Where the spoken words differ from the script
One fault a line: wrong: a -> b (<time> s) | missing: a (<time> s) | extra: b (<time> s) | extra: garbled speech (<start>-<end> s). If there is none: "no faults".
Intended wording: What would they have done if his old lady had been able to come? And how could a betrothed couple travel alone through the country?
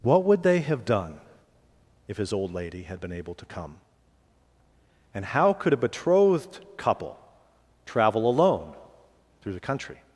no faults